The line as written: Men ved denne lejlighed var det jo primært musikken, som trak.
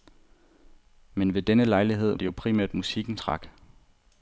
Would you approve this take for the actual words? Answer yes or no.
no